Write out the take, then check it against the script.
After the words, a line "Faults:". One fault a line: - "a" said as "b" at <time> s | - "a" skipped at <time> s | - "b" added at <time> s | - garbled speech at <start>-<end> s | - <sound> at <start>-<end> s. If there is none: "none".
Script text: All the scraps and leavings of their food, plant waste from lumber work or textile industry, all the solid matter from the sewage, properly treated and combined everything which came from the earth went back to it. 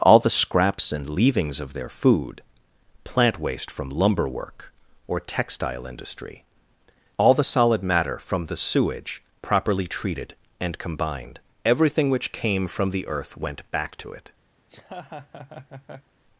All the scraps and leavings of their food, plant waste from lumber work or textile industry, all the solid matter from the sewage, properly treated and combined everything which came from the earth went back to it.
Faults:
- laugh at 14.6-16.1 s